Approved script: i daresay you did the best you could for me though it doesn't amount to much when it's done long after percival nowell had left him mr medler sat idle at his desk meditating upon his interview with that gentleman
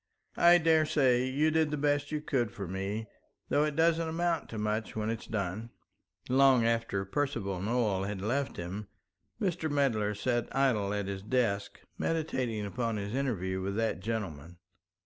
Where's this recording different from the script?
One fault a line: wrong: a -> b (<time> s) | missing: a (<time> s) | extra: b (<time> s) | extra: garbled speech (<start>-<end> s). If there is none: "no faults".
no faults